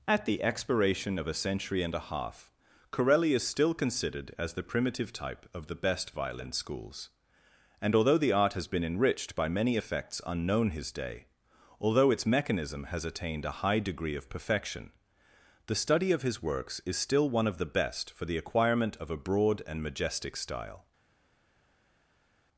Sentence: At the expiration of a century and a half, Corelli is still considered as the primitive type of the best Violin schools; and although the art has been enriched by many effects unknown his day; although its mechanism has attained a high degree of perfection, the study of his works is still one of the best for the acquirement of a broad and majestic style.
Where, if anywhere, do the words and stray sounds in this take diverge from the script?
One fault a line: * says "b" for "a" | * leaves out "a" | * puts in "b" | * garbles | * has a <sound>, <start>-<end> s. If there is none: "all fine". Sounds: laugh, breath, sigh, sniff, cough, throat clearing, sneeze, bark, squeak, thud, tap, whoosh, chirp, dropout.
all fine